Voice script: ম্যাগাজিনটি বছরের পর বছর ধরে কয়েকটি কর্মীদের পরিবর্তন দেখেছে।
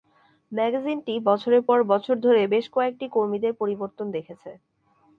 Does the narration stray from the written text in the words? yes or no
yes